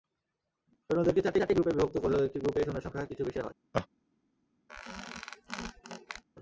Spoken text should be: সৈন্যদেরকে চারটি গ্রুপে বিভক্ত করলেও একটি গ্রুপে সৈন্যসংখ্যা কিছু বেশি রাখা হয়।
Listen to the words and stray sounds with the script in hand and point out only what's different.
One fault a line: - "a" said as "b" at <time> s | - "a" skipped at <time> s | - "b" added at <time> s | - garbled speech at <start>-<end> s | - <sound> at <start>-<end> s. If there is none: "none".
- "চারটি" added at 1.4 s
- "রাখা" skipped at 3.4 s
- laugh at 3.7-3.9 s
- squeak at 4.7-6.2 s